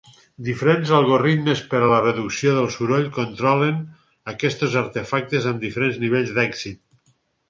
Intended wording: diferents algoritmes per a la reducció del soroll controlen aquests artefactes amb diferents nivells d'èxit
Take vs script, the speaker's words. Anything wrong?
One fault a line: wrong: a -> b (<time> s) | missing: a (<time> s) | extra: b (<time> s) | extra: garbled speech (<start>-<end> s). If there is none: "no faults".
no faults